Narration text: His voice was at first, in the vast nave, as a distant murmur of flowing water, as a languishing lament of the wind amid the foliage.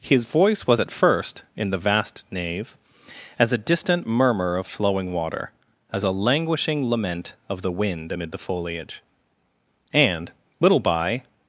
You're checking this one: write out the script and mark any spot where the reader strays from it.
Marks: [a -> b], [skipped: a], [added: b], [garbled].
His voice was at first, in the vast nave, as a distant murmur of flowing water, as a languishing lament of the wind amid the foliage. [added: And little by]